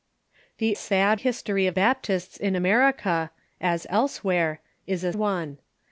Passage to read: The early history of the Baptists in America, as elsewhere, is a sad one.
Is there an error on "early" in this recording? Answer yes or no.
yes